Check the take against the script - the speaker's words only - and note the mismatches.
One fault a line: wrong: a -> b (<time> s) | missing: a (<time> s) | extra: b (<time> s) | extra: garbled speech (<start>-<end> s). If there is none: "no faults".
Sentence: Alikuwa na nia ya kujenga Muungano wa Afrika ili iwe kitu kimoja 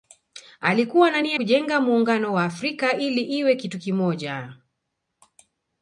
missing: ya (1.4 s)